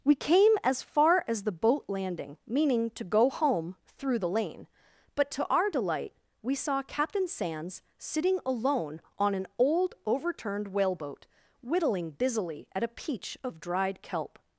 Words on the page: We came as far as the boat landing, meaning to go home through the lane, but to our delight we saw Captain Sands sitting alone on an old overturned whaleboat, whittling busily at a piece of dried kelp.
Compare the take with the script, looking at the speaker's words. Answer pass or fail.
fail